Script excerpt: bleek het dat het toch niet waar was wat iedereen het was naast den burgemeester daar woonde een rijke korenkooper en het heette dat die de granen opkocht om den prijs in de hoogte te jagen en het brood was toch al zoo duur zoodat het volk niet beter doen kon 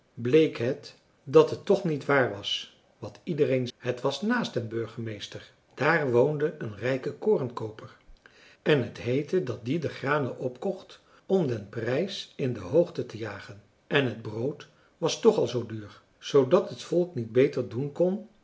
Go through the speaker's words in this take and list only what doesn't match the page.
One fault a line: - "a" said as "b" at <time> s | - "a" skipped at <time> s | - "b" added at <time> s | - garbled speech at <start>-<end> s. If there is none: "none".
none